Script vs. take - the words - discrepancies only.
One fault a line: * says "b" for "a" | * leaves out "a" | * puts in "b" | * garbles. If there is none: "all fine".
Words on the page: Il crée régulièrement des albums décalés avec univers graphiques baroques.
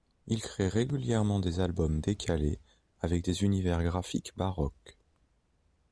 * puts in "des"